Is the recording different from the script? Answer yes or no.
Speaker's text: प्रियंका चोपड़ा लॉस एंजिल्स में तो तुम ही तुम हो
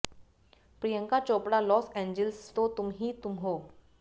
yes